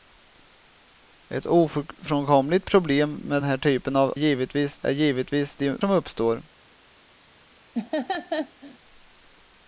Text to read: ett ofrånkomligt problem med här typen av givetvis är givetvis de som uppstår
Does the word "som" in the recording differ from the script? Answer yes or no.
no